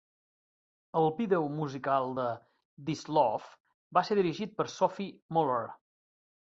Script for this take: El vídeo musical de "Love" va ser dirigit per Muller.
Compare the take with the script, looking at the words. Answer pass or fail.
fail